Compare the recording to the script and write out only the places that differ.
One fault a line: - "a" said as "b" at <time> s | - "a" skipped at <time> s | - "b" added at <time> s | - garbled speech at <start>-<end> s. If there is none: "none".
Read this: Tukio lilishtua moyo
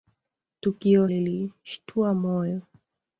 none